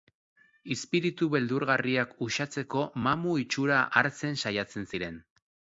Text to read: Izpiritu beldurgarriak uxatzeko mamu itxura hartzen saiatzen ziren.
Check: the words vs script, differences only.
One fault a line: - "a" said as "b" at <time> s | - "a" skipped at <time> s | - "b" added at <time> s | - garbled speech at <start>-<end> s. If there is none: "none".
none